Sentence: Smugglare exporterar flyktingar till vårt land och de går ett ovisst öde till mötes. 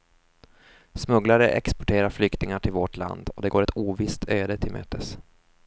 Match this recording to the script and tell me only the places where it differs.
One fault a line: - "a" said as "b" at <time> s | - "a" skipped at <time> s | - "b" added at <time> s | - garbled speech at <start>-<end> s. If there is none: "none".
none